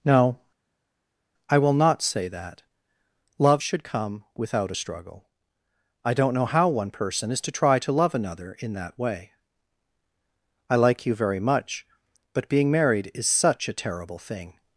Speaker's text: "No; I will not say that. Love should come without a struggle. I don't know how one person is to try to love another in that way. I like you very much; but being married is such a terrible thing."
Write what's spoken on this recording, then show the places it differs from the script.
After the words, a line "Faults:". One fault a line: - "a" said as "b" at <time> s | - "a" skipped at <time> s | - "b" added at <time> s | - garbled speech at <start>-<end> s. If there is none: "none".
"No; I will not say that. Love should come without a struggle. I don't know how one person is to try to love another in that way. I like you very much; but being married is such a terrible thing."
Faults:
none